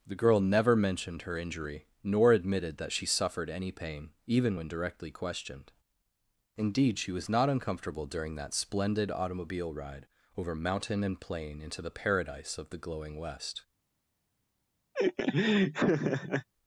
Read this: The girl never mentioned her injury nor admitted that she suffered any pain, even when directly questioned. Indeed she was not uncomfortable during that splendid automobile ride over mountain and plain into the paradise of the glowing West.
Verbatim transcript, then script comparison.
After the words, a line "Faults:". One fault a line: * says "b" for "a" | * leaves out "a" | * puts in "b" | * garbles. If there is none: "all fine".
The girl never mentioned her injury nor admitted that she suffered any pain, even when directly questioned. Indeed she was not uncomfortable during that splendid automobile ride over mountain and plain into the paradise of the glowing West.
Faults:
all fine